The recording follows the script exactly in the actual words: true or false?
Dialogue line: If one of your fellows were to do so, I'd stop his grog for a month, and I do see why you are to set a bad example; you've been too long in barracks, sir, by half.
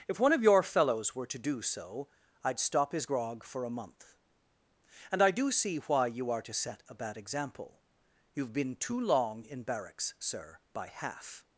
true